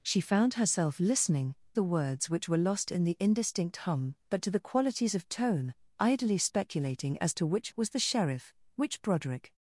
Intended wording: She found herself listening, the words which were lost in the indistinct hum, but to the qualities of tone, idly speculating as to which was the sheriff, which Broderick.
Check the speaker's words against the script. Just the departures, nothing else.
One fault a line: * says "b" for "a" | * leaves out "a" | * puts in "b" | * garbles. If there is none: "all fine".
all fine